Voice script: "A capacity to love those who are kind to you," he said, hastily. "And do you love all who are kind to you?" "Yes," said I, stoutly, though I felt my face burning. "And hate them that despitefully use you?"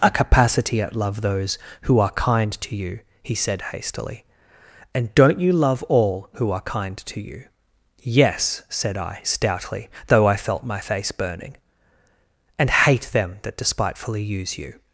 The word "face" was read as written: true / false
true